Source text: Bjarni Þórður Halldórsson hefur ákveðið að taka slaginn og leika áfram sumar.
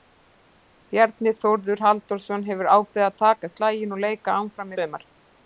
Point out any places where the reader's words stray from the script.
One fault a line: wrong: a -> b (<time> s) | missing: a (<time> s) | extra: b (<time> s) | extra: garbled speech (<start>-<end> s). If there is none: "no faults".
no faults